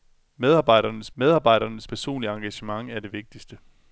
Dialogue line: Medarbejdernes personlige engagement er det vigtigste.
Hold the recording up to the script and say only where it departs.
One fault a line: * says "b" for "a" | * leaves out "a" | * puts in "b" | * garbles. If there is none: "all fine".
* puts in "medarbejdernes"